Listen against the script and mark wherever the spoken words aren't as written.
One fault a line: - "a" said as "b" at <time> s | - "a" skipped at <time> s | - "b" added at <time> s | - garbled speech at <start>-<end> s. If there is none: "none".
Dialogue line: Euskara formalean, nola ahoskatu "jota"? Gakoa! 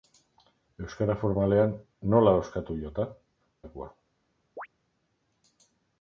none